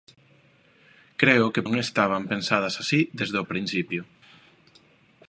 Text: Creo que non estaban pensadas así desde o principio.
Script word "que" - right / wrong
right